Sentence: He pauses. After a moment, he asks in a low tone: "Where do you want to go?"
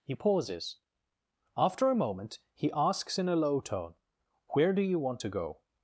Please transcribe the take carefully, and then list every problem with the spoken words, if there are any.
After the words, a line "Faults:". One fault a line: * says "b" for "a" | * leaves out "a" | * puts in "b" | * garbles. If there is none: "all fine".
He pauses. After a moment, he asks in a low tone: "Where do you want to go?"
Faults:
all fine